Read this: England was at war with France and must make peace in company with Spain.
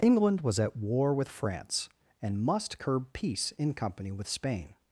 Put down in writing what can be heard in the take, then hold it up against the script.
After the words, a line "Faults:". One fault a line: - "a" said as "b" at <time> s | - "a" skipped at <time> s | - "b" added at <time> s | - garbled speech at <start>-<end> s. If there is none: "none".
England was at war with France and must curb peace in company with Spain.
Faults:
- "make" said as "curb" at 2.8 s